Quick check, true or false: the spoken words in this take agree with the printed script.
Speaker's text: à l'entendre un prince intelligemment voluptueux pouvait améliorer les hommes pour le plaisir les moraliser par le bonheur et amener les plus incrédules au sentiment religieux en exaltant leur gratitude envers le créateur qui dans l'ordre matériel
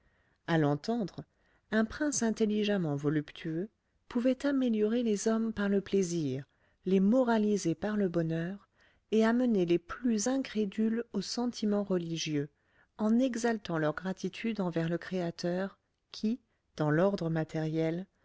false